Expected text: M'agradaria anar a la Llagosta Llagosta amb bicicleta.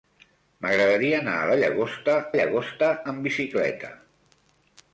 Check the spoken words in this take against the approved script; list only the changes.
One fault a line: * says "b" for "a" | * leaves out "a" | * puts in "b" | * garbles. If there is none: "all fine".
all fine